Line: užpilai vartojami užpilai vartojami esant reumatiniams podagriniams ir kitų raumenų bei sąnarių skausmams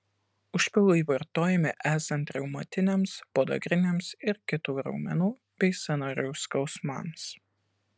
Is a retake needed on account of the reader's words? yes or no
yes